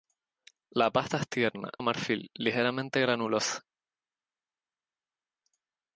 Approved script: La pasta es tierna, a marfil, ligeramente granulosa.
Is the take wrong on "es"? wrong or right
right